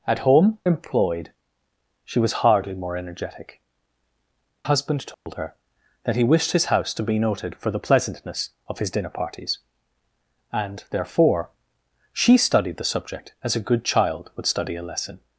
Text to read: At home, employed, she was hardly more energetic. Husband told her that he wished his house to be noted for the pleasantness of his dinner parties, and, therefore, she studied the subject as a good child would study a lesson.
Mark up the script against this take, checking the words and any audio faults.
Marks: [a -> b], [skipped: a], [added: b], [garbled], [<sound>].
At home, employed, she was hardly more energetic. Husband told [dropout] her that he wished his house to be noted for the pleasantness of his dinner parties, and, therefore, she studied the subject as a good child would study a lesson.